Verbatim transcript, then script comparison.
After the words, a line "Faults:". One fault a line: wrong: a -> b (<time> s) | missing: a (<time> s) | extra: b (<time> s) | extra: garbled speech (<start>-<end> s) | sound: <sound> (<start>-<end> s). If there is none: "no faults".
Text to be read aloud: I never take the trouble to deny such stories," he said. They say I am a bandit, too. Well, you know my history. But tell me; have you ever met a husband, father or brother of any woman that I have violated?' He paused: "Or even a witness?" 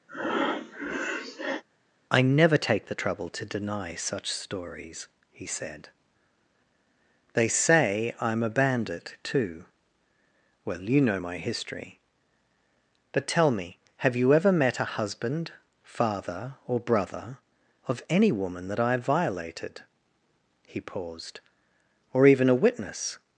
I never take the trouble to deny such stories," he said. They say I am a bandit, too. Well, you know my history. But tell me; have you ever met a husband, father or brother of any woman that I have violated?' He paused: "Or even a witness?"
Faults:
sound: breath (0.1-1.6 s)